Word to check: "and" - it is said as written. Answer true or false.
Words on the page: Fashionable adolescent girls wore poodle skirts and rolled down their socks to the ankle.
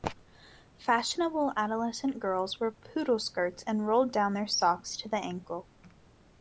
true